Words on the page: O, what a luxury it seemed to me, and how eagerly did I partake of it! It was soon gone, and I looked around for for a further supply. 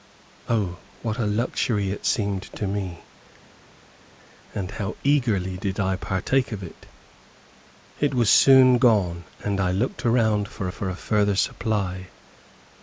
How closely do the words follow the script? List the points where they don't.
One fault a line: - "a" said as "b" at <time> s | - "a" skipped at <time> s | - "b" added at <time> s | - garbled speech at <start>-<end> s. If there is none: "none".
none